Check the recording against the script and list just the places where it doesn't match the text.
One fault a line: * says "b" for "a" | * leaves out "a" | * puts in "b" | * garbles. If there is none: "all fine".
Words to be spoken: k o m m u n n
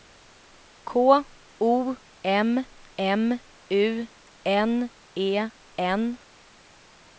* puts in "e"